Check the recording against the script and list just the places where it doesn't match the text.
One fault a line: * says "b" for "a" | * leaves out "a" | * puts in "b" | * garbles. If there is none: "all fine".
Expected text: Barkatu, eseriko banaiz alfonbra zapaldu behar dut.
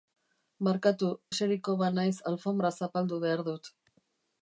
all fine